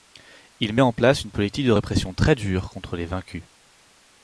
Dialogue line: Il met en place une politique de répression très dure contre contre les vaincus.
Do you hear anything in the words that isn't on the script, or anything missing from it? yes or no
yes